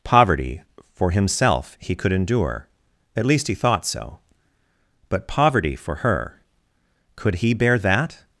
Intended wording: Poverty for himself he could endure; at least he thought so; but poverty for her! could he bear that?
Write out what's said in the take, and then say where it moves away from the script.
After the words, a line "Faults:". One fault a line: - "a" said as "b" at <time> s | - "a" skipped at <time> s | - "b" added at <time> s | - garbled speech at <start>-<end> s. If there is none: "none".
Poverty for himself he could endure; at least he thought so; but poverty for her! could he bear that?
Faults:
none